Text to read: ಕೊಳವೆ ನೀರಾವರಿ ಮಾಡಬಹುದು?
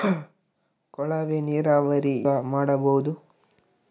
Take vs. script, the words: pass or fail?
pass